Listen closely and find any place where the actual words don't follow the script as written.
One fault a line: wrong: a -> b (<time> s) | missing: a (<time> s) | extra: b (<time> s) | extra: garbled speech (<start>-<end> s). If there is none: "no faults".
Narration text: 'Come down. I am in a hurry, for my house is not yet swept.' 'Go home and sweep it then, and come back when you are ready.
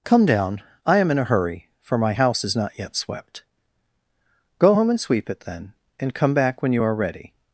no faults